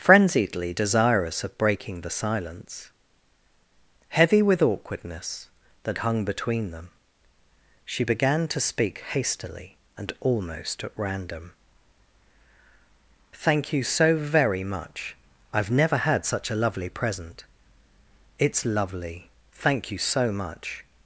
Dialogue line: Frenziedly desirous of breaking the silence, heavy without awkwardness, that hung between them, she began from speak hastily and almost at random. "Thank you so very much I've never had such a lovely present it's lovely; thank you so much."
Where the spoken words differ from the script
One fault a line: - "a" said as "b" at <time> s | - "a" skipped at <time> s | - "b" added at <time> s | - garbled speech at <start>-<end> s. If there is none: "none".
- "without" said as "with" at 4.4 s
- "from" said as "to" at 8.5 s